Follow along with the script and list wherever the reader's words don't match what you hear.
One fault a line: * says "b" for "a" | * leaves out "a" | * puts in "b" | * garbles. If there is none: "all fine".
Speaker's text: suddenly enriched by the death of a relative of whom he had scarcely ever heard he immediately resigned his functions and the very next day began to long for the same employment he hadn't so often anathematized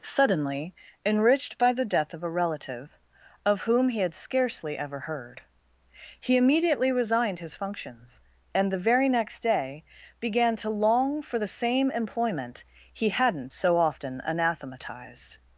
all fine